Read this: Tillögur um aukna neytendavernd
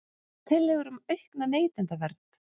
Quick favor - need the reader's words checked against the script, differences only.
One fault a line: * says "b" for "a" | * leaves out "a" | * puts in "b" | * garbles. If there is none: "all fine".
all fine